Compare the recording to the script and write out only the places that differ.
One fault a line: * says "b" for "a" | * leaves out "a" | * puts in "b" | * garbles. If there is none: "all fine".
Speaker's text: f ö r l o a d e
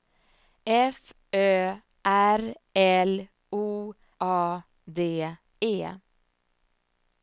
all fine